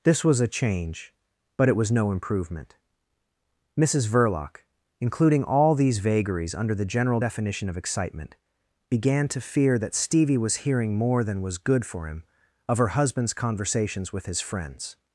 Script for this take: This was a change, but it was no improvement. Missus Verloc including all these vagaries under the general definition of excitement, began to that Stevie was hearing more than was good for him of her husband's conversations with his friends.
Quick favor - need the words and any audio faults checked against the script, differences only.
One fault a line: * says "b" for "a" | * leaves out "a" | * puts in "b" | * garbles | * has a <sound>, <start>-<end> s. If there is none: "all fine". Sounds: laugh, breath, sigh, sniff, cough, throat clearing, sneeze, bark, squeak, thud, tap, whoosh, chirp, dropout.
* puts in "fear"